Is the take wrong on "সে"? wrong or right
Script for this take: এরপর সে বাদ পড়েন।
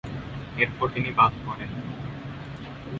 wrong